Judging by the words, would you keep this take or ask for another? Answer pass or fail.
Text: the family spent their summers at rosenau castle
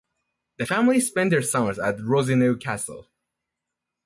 pass